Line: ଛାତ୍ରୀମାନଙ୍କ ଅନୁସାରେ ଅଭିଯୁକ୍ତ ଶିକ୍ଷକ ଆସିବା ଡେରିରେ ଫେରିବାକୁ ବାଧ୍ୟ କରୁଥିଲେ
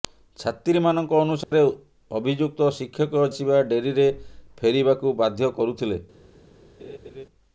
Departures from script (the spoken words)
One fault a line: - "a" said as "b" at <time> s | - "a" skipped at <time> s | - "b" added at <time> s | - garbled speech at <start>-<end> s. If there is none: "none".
none